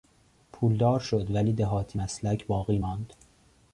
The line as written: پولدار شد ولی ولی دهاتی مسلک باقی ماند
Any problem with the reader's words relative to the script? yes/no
yes